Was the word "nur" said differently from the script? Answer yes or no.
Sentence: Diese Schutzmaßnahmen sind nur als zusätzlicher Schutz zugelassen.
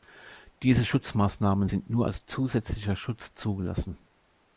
no